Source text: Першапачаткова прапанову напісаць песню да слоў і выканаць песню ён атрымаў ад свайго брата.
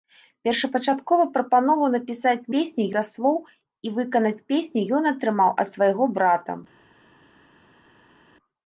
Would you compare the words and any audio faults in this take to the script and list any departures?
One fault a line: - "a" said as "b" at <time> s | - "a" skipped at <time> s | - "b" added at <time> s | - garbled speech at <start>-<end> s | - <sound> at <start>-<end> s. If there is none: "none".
none